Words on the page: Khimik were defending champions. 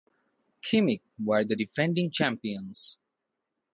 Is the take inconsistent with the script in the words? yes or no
yes